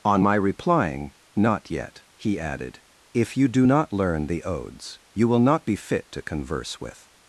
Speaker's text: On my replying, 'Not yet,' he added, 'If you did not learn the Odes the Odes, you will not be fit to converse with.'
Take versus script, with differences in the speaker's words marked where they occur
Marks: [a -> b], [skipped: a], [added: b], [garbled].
On my replying, 'Not yet,' he added, 'If you [did -> do] not learn the Odes [skipped: the Odes,] you will not be fit to converse with.'